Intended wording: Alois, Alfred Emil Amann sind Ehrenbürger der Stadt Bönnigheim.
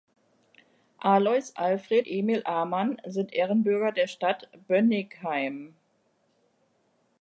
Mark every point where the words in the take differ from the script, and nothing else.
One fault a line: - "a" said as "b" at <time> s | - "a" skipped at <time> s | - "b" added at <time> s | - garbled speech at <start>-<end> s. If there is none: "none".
none